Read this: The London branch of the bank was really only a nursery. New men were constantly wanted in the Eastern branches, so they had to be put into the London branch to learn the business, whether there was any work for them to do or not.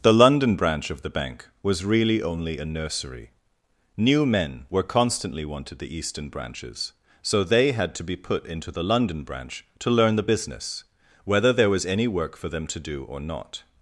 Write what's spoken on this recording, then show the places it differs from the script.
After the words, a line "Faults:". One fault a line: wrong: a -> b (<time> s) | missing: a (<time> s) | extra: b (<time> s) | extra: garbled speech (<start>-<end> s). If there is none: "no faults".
The London branch of the bank was really only a nursery. New men were constantly wanted the Eastern branches, so they had to be put into the London branch to learn the business, whether there was any work for them to do or not.
Faults:
missing: in (5.8 s)